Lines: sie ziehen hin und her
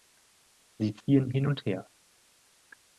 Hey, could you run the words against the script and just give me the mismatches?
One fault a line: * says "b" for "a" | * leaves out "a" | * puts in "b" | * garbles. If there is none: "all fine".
all fine